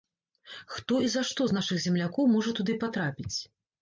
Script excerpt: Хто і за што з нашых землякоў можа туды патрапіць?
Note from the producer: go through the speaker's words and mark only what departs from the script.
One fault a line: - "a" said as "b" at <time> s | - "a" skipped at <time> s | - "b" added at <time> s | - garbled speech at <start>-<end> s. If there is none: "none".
none